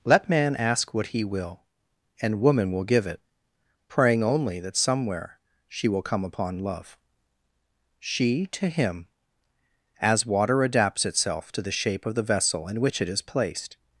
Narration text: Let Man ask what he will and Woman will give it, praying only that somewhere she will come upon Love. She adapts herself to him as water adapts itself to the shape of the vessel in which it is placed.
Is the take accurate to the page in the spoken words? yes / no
no